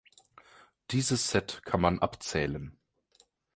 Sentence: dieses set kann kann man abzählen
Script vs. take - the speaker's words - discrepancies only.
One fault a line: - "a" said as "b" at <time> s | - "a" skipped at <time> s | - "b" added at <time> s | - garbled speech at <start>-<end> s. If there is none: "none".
- "kann" skipped at 1.8 s